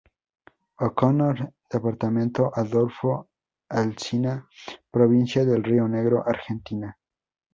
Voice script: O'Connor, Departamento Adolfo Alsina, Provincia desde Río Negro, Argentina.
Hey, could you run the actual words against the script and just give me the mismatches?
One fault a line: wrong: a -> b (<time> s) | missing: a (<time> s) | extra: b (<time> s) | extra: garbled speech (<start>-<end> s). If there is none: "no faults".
wrong: desde -> de (5.4 s)